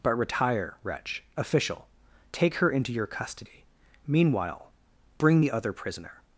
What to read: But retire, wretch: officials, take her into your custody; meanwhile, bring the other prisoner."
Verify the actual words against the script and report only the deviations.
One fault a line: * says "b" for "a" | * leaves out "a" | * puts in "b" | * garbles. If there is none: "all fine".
* says "official" for "officials"